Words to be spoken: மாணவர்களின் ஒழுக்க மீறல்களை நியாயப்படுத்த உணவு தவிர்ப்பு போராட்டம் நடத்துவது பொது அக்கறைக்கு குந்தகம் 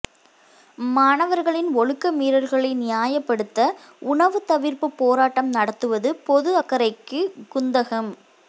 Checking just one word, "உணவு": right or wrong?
right